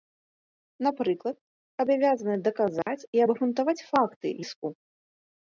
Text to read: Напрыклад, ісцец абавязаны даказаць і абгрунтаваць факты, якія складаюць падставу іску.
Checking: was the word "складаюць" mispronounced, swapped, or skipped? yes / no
yes